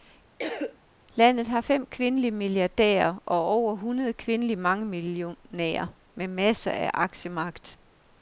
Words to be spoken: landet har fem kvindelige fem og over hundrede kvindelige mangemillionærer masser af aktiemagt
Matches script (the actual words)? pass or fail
fail